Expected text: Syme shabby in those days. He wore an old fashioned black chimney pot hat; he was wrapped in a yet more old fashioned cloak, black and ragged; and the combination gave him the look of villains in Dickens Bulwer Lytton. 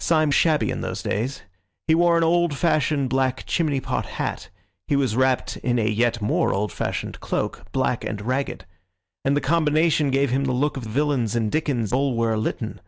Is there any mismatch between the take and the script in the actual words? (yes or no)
no